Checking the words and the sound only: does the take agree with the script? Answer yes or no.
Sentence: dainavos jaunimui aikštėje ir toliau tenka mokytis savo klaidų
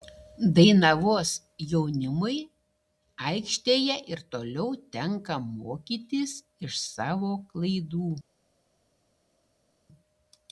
no